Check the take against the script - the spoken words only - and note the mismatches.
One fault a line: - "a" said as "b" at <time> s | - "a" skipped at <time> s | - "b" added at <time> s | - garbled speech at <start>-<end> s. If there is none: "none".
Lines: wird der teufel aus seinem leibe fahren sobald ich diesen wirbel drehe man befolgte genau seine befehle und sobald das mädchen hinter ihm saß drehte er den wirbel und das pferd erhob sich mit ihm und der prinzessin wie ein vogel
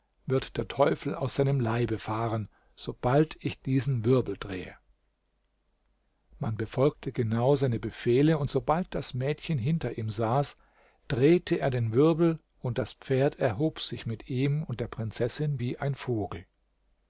none